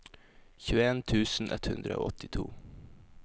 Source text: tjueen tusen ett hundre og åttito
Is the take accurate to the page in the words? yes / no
yes